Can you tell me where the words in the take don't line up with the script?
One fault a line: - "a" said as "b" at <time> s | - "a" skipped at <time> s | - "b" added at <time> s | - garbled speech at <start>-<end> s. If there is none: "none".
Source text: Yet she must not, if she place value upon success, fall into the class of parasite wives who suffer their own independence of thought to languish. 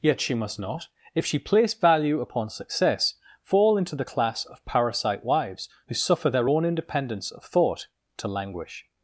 none